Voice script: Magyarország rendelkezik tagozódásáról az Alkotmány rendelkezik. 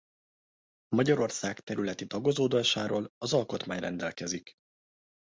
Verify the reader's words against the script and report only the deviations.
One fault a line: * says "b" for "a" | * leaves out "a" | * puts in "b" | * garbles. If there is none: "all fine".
* says "területi" for "rendelkezik"